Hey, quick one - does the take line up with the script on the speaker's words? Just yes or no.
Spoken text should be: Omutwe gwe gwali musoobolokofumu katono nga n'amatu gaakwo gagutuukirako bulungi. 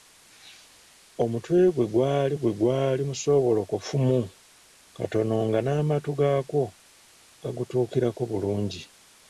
no